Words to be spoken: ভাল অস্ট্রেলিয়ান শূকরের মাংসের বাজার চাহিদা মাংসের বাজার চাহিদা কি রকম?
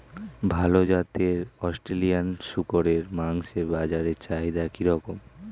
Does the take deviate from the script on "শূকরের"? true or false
false